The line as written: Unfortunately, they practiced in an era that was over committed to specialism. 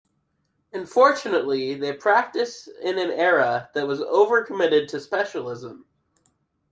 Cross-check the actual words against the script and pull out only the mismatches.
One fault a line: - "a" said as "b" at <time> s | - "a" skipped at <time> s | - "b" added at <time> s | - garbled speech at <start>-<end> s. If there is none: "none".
none